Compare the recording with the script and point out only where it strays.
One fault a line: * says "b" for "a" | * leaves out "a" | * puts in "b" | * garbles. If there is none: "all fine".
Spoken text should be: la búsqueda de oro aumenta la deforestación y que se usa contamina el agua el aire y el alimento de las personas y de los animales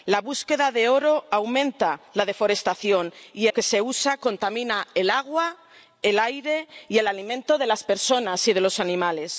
all fine